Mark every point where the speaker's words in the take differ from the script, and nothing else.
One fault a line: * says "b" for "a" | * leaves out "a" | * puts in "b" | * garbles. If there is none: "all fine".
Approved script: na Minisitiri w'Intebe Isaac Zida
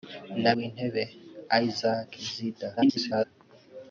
* leaves out "Minisitiri"
* garbles